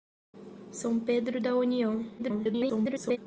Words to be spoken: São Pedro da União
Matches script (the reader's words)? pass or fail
fail